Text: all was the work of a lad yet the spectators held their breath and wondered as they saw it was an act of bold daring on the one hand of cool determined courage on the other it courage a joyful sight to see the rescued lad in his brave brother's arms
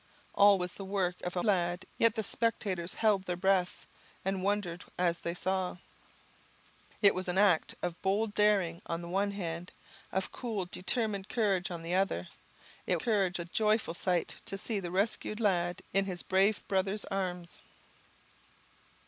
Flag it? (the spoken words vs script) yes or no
no